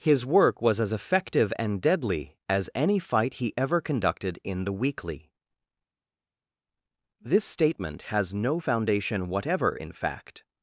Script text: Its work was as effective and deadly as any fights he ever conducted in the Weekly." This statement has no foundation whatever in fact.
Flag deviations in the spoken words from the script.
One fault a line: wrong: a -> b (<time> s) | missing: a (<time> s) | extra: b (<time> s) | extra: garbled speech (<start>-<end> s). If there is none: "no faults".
wrong: Its -> His (0.0 s)
wrong: fights -> fight (3.0 s)